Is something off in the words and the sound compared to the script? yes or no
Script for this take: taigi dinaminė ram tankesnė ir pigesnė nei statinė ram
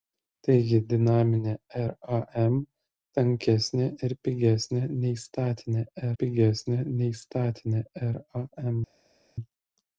yes